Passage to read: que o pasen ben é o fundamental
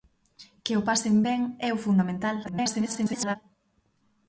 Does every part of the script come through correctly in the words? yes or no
no